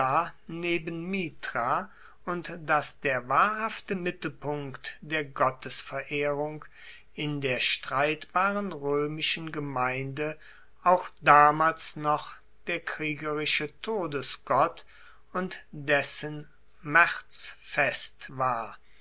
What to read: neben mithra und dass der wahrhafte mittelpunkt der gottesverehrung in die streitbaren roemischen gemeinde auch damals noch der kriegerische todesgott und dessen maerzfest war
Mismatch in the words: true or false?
true